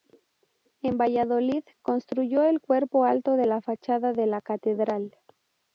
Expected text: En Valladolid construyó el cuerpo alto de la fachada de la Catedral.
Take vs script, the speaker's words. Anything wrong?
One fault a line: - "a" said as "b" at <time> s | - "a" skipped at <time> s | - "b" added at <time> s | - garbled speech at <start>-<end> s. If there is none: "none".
none